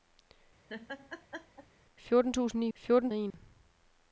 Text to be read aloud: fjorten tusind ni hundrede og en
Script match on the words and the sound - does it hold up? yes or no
no